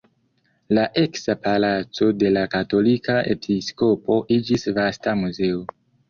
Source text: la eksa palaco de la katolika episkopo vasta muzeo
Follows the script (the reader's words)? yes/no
no